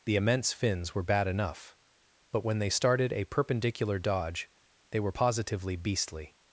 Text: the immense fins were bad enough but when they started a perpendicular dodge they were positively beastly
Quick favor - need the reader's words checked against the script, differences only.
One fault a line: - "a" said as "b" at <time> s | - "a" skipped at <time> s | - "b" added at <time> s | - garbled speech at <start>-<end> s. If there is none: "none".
none